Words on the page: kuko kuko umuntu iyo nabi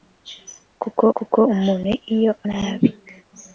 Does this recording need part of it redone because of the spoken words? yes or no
no